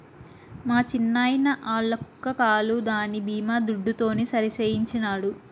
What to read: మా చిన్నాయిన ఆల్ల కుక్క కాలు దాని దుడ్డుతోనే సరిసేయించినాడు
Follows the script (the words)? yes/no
no